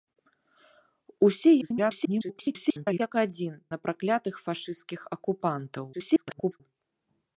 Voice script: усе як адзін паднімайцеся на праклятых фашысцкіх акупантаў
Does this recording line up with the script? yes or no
no